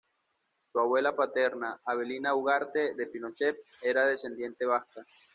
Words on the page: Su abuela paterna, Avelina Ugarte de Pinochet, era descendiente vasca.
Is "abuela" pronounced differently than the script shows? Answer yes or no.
no